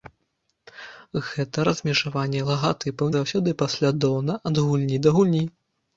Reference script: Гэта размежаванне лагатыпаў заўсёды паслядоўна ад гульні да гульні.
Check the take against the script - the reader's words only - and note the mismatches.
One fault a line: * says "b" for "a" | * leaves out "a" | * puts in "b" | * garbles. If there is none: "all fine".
all fine